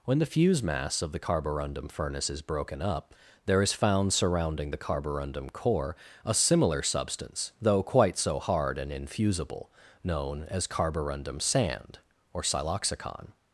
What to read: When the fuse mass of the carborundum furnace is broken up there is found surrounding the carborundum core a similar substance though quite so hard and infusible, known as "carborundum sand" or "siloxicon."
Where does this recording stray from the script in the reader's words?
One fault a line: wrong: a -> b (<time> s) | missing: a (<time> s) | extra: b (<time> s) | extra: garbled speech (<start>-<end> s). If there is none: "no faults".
no faults